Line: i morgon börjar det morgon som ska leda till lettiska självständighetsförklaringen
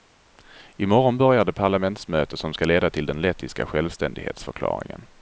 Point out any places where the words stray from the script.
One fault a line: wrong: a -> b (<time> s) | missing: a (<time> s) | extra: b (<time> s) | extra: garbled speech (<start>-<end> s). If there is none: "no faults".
wrong: morgon -> parlamentsmöte (1.5 s)
extra: den (3.1 s)